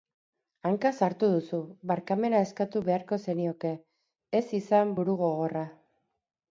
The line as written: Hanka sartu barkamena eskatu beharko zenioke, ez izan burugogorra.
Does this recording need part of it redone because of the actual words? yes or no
yes